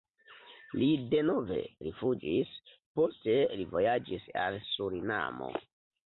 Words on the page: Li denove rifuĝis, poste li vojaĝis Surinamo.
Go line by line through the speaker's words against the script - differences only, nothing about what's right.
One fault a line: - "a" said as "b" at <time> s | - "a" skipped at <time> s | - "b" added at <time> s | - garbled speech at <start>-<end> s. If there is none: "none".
- "al" added at 4.5 s